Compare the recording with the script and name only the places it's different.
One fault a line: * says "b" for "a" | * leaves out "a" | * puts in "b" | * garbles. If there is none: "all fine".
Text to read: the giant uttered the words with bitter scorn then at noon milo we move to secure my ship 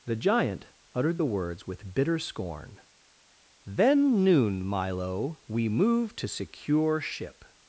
* leaves out "at"
* leaves out "my"